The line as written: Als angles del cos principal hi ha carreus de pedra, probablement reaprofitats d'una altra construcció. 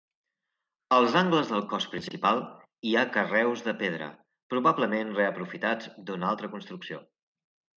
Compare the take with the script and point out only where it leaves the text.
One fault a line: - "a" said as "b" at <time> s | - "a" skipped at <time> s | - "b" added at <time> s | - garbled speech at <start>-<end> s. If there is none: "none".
none